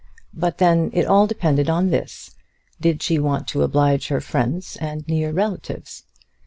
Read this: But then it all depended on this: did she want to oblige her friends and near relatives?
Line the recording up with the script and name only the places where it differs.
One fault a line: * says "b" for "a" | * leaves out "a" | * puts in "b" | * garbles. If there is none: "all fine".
all fine